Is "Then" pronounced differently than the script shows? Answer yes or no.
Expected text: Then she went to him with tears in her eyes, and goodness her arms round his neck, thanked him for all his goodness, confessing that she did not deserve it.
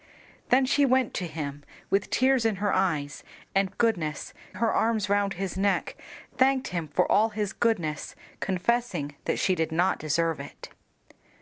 no